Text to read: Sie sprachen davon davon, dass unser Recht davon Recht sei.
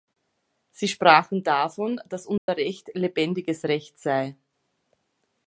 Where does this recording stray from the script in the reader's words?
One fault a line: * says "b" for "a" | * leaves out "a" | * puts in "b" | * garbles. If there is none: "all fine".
* leaves out "davon"
* says "lebendiges" for "davon"